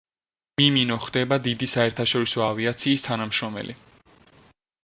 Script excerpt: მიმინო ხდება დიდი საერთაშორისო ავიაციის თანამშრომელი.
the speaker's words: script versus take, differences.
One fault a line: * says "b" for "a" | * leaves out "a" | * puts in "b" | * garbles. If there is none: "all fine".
all fine